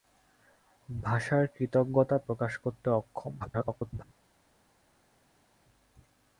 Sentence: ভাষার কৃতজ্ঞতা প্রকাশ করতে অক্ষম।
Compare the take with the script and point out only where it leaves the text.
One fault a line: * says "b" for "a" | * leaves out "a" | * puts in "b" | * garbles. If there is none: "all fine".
* garbles